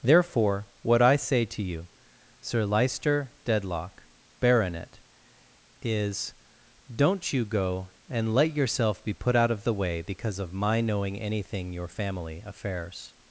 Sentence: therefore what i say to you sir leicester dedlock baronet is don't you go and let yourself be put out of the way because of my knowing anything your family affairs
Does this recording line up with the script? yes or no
yes